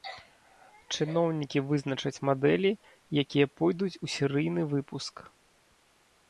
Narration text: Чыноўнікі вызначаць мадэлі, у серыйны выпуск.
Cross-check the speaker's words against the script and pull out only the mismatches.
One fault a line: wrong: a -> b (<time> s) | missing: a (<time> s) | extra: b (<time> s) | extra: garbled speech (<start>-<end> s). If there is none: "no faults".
extra: якія пойдуць (3.2 s)